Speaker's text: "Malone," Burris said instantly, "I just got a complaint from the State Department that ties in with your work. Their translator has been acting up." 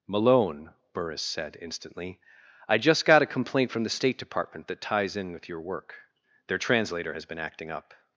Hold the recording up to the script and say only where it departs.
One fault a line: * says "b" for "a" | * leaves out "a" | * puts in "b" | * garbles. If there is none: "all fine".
all fine